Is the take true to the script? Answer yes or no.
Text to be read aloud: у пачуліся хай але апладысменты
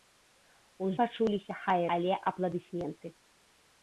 yes